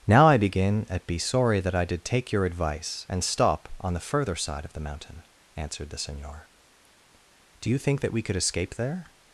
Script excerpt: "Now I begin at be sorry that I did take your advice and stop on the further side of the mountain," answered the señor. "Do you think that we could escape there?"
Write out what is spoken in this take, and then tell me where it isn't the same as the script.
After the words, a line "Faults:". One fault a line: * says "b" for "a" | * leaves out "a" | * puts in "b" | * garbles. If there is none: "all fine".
"Now I begin at be sorry that I did take your advice and stop on the further side of the mountain," answered the señor. "Do you think that we could escape there?"
Faults:
all fine